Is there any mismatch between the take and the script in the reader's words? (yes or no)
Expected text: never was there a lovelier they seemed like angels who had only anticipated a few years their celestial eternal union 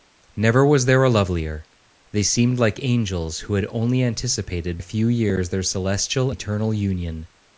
no